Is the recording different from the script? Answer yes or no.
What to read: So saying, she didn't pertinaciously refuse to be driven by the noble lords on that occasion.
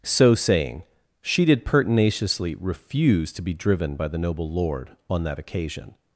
yes